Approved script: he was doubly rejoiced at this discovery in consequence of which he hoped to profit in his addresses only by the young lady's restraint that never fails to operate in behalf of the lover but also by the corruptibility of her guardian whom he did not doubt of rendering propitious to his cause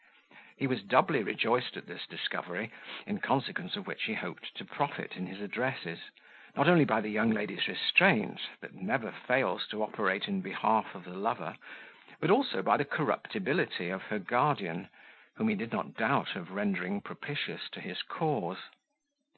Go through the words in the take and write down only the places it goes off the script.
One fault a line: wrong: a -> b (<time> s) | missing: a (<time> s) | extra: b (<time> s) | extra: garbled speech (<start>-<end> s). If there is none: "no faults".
extra: not (6.5 s)